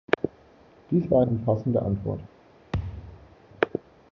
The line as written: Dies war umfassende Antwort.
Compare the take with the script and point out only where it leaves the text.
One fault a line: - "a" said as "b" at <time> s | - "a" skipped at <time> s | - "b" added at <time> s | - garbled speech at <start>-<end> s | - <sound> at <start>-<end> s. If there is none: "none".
- thud at 2.7-3.4 s